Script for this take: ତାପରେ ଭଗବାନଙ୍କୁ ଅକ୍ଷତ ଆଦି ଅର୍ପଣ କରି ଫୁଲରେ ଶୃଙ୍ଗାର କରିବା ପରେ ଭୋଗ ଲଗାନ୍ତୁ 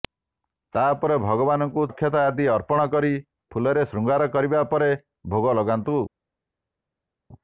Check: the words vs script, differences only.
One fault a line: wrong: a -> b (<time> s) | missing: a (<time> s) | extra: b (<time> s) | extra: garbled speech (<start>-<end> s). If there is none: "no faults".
no faults